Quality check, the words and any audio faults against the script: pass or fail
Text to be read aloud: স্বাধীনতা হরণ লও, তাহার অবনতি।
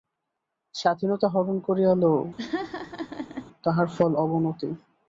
fail